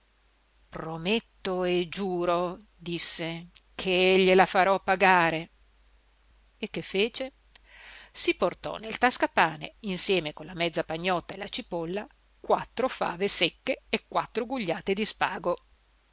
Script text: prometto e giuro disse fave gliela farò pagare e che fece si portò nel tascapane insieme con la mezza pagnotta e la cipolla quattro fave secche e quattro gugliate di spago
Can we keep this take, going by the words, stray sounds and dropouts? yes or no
no